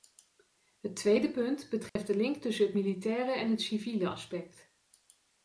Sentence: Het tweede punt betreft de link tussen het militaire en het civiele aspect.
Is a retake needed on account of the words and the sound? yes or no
yes